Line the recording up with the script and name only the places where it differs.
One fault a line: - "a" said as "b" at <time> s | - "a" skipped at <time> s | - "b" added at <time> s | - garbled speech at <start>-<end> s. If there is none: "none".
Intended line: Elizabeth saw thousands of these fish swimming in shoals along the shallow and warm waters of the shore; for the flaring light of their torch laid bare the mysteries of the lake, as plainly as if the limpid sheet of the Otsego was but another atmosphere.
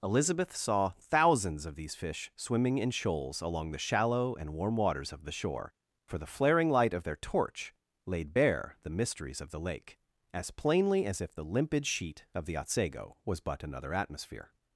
none